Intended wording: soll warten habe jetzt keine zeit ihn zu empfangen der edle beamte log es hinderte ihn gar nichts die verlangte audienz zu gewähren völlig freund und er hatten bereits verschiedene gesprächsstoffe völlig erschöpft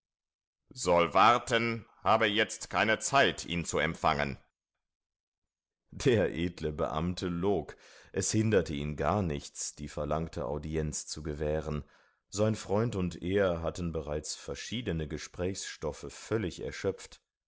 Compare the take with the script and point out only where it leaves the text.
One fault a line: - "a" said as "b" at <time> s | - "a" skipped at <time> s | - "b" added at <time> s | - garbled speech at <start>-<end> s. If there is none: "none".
- "völlig" said as "sein" at 12.3 s